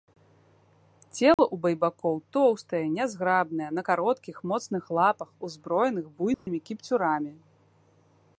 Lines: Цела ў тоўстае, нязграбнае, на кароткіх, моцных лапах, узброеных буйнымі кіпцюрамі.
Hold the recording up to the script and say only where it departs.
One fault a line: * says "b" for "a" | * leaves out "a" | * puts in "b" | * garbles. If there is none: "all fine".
* puts in "байбакоў"